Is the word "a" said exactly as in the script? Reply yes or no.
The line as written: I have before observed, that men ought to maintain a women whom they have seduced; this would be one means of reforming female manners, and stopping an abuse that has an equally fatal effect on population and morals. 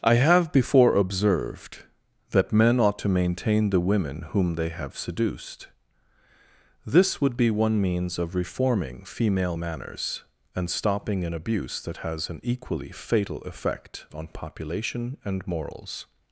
no